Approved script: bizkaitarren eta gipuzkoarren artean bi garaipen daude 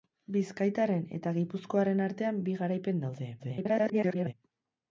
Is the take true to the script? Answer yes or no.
no